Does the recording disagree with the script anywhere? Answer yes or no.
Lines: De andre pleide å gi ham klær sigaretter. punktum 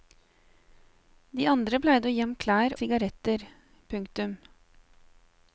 no